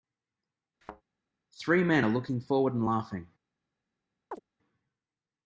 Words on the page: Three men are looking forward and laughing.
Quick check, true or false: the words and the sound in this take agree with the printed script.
false